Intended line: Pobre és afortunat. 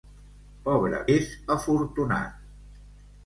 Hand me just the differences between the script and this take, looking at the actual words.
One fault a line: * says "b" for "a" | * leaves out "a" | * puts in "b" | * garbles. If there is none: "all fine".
all fine